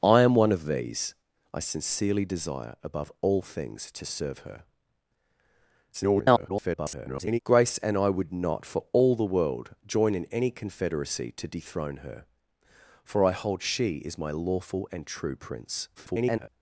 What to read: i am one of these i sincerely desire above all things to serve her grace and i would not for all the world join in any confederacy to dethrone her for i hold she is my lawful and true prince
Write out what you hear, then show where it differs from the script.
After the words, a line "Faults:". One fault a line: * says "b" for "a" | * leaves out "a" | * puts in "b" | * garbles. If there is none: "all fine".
i am one of these i sincerely desire above all things to serve her [garbled] grace and i would not for all the world join in any confederacy to dethrone her for i hold she is my lawful and true prince [garbled]
Faults:
* garbles
* garbles